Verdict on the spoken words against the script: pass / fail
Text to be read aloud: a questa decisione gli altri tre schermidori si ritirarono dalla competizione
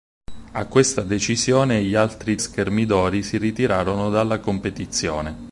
fail